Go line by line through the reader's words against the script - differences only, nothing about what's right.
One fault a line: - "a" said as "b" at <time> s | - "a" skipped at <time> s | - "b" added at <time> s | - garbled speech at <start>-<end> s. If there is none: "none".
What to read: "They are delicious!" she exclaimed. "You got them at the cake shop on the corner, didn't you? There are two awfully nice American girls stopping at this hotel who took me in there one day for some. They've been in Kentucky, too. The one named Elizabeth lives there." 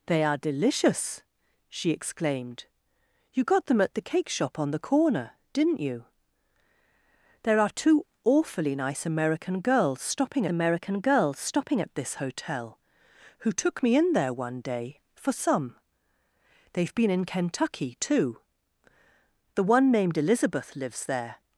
- "American girls stopping" added at 10.5 s